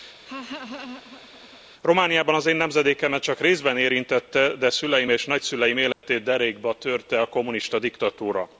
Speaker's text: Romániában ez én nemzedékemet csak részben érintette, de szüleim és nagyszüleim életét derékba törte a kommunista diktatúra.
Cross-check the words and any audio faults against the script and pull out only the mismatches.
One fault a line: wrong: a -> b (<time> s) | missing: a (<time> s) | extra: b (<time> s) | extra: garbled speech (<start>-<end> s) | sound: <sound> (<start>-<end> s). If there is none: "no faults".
sound: laugh (0.3-1.6 s)
wrong: ez -> az (2.3 s)
sound: dropout (5.9-6.0 s)